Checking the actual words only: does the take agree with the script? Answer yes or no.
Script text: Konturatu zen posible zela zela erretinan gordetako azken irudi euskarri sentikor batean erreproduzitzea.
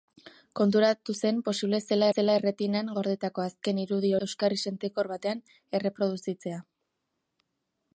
yes